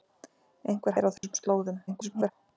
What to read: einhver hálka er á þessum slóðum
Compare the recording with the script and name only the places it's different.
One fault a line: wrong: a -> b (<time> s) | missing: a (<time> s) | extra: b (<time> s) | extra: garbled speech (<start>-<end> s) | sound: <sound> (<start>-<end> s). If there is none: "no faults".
missing: hálka (0.9 s)
sound: dropout (1.2-1.2 s)
extra: garbled speech (1.9-2.3 s)